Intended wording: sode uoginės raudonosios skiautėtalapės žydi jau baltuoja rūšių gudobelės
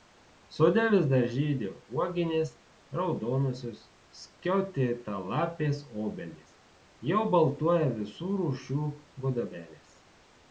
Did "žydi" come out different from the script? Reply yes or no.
yes